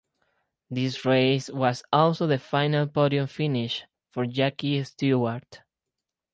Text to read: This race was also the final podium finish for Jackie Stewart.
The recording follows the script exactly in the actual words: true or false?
true